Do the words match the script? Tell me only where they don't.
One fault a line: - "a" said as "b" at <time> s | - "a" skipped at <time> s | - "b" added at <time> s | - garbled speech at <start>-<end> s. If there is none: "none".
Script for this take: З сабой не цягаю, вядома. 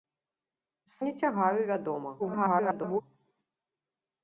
- "сабой" skipped at 0.9 s
- garbled speech at 2.2-3.0 s